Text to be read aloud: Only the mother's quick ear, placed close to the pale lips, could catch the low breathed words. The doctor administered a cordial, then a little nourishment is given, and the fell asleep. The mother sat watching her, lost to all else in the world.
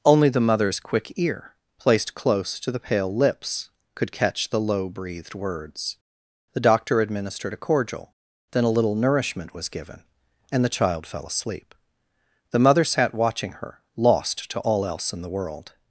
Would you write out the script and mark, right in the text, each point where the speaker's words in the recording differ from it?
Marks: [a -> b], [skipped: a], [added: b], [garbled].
Only the mother's quick ear, placed close to the pale lips, could catch the low breathed words. The doctor administered a cordial, then a little nourishment [is -> was] given, and the [added: child] fell asleep. The mother sat watching her, lost to all else in the world.